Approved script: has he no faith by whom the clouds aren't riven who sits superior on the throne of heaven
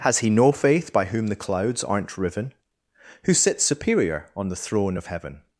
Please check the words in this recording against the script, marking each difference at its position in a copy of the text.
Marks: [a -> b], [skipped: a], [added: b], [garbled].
has he no faith by whom the clouds aren't riven who sits superior on the throne of heaven